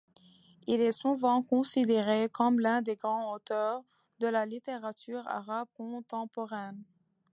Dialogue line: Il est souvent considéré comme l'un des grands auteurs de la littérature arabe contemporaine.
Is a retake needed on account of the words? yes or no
no